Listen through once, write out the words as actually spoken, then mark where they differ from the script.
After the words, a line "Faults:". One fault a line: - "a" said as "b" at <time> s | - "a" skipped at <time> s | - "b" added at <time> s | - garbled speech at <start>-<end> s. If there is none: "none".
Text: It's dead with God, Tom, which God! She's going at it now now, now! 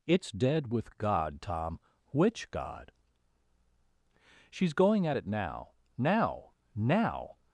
It's dead with God, Tom, which God! She's going at it now now, now!
Faults:
none